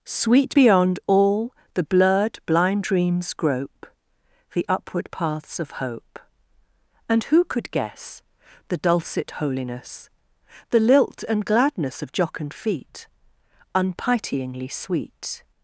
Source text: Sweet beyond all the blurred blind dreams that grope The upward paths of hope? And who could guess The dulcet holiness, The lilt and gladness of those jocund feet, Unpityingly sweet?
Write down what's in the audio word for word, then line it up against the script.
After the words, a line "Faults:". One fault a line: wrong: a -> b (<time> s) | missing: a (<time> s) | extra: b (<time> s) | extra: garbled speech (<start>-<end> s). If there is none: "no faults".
Sweet beyond all the blurred blind dreams grope The upward paths of hope? And who could guess The dulcet holiness, The lilt and gladness of jocund feet, Unpityingly sweet?
Faults:
missing: that (3.3 s)
missing: those (12.1 s)